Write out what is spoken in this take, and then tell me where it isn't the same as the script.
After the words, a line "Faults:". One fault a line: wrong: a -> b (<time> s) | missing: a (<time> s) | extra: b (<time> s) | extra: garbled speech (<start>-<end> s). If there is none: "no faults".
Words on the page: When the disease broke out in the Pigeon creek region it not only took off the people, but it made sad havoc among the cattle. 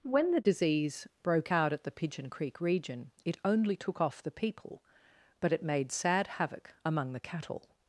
When the disease broke out at the Pigeon creek region it only took off the people, but it made sad havoc among the cattle.
Faults:
wrong: in -> at (1.7 s)
missing: not (3.4 s)